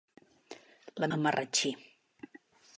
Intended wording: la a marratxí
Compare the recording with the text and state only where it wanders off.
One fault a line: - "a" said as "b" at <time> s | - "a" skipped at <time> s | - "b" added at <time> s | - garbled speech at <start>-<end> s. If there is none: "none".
none